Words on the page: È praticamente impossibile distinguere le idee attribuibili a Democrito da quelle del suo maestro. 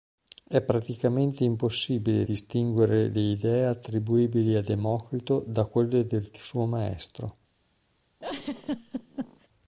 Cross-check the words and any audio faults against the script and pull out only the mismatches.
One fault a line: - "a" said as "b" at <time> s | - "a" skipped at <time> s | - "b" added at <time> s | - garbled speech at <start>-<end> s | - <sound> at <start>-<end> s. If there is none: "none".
- laugh at 8.2-9.5 s